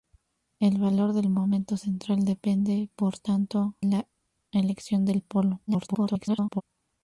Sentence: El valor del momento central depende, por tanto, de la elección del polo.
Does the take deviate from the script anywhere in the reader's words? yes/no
yes